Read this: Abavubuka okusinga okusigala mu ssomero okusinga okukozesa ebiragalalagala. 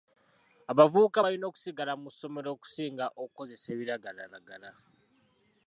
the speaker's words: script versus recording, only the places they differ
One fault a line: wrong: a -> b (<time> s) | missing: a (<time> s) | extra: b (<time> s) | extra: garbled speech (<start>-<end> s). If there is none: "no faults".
wrong: okusinga -> balina (1.2 s)